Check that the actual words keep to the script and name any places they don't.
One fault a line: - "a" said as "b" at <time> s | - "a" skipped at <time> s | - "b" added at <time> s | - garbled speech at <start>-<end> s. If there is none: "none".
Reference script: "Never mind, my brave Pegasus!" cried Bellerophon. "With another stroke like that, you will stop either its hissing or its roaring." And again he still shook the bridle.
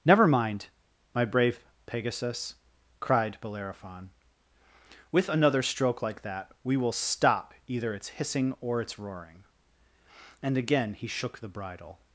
- "you" said as "we" at 6.6 s
- "still" skipped at 11.1 s